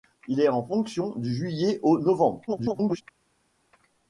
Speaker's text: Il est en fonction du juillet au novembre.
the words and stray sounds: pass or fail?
fail